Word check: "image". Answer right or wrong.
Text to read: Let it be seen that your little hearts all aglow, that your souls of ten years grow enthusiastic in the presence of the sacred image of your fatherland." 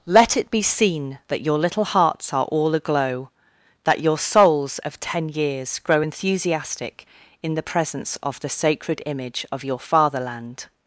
right